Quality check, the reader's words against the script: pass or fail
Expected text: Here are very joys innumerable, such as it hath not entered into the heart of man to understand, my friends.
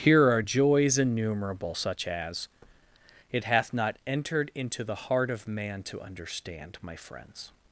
fail